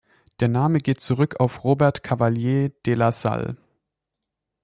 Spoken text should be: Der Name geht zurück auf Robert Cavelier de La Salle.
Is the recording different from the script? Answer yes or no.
no